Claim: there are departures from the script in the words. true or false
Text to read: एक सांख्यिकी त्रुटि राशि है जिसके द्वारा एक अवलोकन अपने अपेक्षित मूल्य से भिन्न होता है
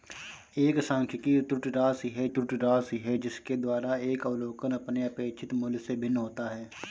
true